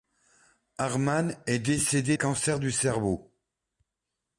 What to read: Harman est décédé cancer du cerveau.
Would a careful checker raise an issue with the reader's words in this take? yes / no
no